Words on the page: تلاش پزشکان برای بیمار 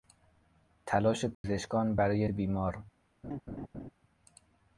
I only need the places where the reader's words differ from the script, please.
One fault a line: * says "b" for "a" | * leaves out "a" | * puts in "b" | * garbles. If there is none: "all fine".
all fine